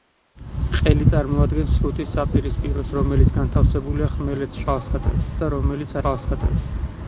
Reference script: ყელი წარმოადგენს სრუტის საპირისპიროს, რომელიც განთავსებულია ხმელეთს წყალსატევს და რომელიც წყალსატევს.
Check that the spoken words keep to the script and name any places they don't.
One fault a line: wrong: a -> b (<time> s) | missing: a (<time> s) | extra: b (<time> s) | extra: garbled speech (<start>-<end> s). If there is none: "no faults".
no faults